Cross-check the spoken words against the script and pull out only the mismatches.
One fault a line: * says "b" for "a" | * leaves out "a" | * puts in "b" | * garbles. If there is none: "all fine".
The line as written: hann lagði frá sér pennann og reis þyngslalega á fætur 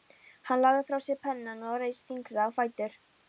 all fine